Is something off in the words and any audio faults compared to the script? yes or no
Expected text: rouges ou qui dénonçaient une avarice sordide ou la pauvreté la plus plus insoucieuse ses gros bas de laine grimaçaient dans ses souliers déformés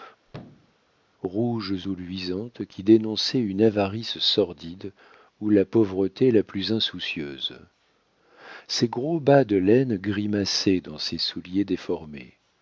yes